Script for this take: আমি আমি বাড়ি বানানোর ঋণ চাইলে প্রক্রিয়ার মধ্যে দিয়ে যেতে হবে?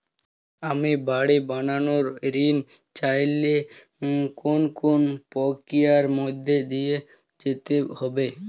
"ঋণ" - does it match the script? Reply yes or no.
yes